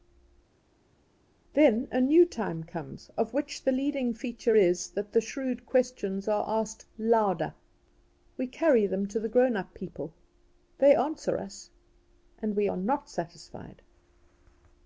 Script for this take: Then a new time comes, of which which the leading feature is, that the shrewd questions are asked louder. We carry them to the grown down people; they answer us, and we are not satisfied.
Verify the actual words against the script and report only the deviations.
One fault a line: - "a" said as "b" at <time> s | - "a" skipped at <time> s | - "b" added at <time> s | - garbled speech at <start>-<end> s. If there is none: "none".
- "which" skipped at 3.6 s
- "down" said as "up" at 9.6 s